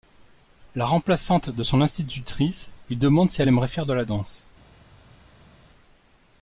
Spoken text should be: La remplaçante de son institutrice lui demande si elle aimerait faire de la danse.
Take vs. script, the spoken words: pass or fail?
pass